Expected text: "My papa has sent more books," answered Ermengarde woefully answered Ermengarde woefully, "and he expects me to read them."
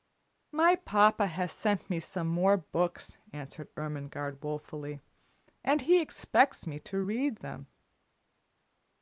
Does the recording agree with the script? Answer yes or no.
no